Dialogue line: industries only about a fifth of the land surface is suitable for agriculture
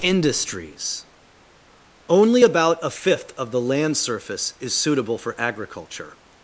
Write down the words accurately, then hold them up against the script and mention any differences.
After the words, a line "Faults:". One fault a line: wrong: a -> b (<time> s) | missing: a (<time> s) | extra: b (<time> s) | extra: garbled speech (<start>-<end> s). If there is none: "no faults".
industries only about a fifth of the land surface is suitable for agriculture
Faults:
no faults